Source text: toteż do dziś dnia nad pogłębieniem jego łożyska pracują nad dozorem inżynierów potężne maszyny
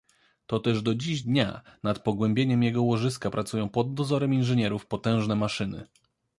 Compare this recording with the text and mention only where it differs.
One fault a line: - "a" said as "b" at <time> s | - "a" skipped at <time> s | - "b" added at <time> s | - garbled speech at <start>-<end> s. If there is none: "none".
- "nad" said as "pod" at 3.7 s